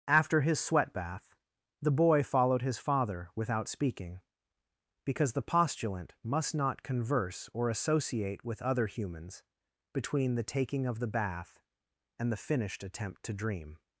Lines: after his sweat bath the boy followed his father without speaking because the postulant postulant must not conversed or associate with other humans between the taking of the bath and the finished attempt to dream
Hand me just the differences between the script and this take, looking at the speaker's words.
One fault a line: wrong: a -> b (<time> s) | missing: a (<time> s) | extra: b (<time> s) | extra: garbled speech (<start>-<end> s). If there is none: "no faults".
missing: postulant (6.1 s)
wrong: conversed -> converse (6.8 s)